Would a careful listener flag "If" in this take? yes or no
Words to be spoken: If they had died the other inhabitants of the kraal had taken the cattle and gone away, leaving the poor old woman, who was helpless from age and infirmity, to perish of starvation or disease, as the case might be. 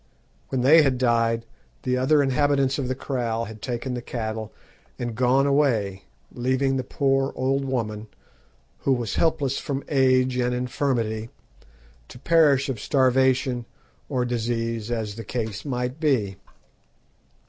yes